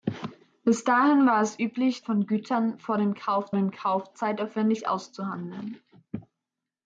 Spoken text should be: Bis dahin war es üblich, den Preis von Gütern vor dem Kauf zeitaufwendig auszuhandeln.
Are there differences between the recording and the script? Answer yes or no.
yes